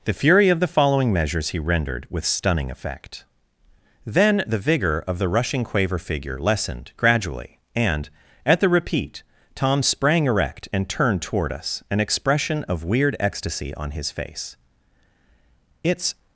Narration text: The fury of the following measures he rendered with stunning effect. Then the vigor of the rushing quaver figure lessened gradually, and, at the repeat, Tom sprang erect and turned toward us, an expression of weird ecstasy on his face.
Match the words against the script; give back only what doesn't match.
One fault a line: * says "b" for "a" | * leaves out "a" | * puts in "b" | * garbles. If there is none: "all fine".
* puts in "It's"